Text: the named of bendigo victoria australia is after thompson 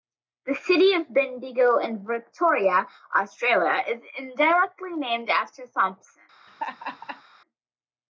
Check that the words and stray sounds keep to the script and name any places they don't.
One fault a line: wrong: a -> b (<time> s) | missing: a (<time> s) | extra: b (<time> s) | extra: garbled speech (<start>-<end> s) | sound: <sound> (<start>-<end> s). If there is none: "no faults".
wrong: named -> city (0.6 s)
extra: in (1.8 s)
extra: indirectly named (4.2 s)
sound: laugh (6.5-7.2 s)